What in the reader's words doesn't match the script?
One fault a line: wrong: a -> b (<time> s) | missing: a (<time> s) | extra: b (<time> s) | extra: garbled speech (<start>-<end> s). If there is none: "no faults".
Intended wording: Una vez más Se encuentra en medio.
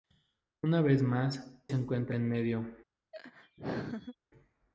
no faults